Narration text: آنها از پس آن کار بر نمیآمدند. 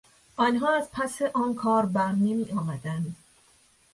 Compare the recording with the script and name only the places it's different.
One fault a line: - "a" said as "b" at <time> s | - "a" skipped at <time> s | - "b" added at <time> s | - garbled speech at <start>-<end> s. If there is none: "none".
none